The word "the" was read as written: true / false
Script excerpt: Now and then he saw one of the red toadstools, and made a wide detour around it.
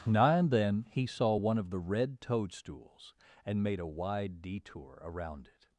true